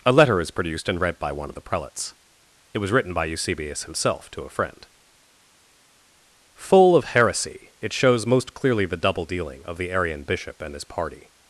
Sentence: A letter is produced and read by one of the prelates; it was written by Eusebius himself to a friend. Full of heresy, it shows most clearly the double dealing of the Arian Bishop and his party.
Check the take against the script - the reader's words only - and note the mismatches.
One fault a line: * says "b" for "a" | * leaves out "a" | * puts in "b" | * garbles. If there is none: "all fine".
all fine